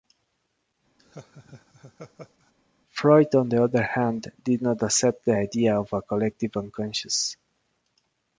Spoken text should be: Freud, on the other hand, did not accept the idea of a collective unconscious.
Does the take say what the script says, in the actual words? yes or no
yes